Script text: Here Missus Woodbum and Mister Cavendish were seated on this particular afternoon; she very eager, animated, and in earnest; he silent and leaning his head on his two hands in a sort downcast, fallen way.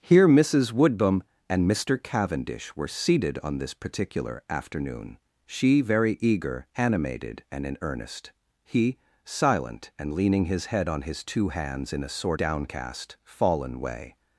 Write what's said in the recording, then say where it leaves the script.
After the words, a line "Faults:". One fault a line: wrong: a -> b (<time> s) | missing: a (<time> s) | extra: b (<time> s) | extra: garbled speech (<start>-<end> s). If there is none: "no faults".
Here Missus Woodbum and Mister Cavendish were seated on this particular afternoon; she very eager, animated, and in earnest; he silent and leaning his head on his two hands in a sort downcast, fallen way.
Faults:
no faults